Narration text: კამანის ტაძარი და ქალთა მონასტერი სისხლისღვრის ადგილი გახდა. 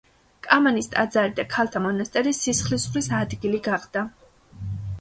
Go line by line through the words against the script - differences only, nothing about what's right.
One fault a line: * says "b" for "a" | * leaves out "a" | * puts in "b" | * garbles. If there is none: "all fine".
all fine